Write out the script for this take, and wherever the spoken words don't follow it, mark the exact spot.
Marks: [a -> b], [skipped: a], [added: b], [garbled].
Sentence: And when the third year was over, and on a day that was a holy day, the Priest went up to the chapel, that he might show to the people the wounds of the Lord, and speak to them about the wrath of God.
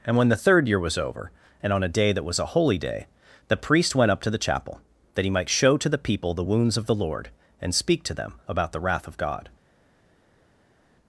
And when the third year was over, and on a day that was a holy day, the Priest went up to the chapel, that he might show to the people the wounds of the Lord, and speak to them about the wrath of God.